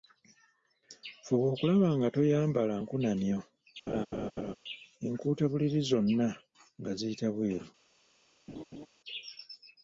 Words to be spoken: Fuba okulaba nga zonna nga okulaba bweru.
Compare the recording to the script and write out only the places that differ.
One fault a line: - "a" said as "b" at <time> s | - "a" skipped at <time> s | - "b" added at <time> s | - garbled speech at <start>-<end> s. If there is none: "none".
- "toyambala nkunamyo enkuutabuliri" added at 2.1 s
- "okulaba" said as "ziyita" at 7.0 s